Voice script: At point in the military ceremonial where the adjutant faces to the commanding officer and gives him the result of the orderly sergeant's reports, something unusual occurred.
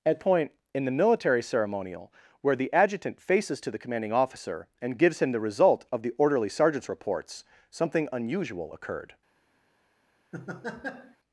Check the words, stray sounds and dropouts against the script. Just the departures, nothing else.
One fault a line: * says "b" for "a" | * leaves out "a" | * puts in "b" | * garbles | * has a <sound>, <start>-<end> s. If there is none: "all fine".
* has a laugh, 10.3-11.2 s